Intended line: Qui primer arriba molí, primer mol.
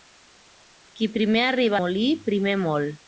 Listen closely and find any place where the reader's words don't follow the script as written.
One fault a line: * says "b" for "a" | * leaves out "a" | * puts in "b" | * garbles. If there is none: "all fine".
all fine